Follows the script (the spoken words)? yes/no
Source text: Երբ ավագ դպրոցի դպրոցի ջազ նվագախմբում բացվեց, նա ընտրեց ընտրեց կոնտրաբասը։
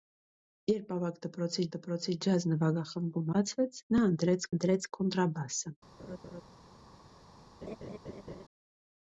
yes